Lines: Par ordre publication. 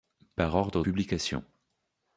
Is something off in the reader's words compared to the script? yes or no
no